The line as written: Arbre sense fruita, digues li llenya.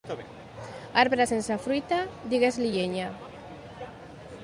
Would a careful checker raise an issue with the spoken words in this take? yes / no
no